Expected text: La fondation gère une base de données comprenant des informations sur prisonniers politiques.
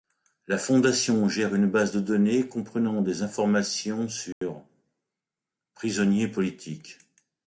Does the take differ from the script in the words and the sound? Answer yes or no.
yes